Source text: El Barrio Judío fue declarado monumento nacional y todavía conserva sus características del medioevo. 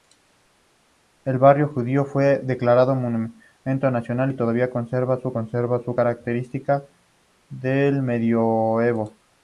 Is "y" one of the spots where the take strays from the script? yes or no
no